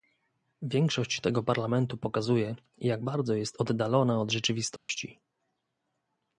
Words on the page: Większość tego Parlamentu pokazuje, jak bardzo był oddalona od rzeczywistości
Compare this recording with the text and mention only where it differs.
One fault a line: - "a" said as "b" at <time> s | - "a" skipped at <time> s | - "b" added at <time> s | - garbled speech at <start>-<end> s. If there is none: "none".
- "był" said as "jest" at 3.3 s